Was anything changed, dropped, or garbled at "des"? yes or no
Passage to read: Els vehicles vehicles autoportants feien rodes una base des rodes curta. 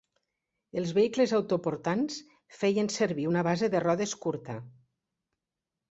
yes